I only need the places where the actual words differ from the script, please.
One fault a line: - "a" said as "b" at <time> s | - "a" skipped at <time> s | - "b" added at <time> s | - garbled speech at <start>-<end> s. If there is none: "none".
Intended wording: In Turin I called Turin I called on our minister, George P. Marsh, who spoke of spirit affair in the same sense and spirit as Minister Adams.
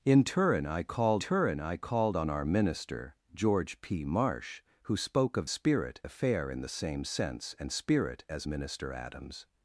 none